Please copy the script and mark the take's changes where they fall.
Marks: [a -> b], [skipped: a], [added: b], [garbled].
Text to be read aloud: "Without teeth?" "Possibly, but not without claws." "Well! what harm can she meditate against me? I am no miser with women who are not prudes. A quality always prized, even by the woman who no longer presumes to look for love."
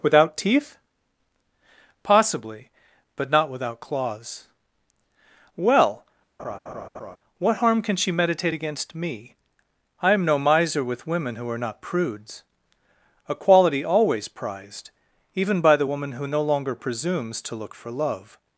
"Without teeth?" "Possibly, but not without claws." "Well! what harm can she meditate against me? I am no miser with women who are not prudes. A quality always prized, even by the woman who no longer presumes to look for love."